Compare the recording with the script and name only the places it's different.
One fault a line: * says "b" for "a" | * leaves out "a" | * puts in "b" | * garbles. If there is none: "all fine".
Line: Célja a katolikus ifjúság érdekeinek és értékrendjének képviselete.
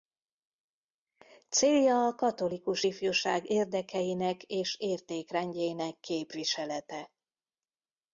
all fine